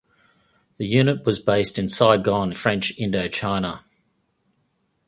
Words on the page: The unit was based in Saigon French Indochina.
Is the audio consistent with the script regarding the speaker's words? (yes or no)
yes